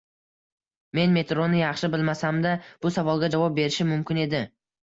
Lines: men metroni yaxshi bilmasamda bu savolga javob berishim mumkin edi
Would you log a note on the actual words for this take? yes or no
no